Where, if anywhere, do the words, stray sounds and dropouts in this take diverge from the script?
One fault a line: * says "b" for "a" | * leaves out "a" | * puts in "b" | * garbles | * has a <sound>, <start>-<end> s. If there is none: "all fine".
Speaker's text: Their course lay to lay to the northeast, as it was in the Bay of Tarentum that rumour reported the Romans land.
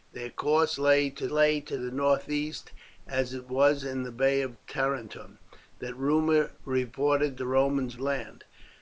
all fine